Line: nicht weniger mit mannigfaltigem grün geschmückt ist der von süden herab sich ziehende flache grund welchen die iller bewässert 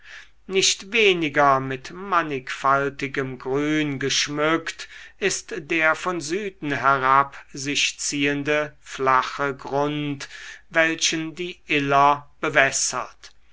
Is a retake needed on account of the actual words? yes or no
no